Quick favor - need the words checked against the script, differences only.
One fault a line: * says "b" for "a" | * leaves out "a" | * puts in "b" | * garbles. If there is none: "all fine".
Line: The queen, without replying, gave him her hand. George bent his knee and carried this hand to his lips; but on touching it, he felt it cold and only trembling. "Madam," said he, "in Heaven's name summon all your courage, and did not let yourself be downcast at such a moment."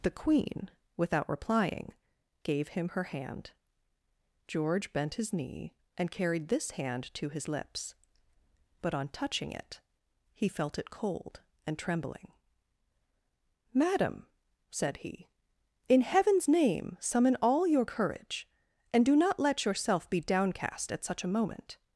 * leaves out "only"
* says "do" for "did"